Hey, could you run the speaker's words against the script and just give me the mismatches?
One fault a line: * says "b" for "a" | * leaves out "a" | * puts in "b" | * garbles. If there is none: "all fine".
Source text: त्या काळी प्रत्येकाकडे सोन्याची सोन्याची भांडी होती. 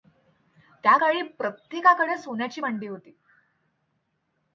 * leaves out "सोन्याची"